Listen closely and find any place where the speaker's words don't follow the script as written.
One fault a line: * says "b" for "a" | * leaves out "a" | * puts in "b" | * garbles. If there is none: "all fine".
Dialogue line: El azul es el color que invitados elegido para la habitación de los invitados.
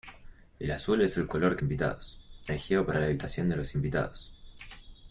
all fine